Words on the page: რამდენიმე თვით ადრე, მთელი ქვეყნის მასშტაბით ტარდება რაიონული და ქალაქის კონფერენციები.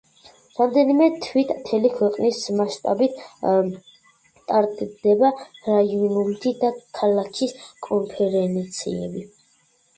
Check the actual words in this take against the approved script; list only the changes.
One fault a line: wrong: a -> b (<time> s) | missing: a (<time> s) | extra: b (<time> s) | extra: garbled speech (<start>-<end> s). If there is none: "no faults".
missing: ადრე (1.5 s)